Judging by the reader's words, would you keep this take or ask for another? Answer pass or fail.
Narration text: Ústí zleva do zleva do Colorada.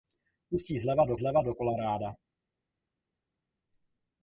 pass